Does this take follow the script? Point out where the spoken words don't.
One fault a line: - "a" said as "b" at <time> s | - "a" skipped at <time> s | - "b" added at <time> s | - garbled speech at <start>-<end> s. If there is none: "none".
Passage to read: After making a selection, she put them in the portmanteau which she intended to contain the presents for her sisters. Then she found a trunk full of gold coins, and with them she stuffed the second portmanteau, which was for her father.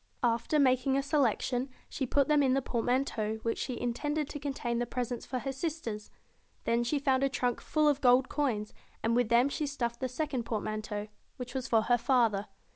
none